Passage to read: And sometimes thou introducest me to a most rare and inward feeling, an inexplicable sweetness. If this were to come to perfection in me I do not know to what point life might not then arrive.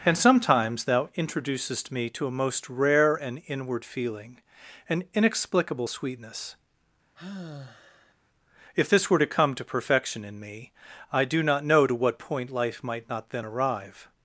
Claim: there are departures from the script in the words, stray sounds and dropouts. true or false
true